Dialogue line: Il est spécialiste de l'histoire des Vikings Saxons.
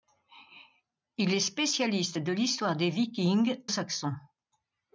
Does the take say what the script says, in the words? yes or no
yes